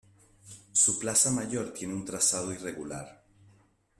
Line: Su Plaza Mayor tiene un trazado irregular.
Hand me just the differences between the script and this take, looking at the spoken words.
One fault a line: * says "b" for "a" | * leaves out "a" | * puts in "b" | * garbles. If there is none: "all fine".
all fine